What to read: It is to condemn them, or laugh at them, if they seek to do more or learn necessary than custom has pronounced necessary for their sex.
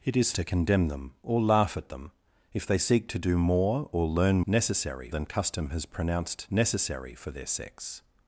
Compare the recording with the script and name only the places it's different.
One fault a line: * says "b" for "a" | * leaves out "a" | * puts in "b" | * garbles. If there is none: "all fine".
all fine